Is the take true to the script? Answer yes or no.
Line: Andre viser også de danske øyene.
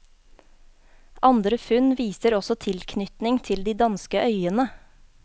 no